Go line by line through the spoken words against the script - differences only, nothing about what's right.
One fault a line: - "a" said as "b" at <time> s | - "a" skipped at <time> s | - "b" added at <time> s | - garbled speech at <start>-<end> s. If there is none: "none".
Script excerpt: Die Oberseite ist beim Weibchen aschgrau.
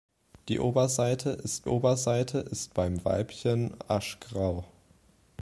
- "Oberseite ist" added at 1.7 s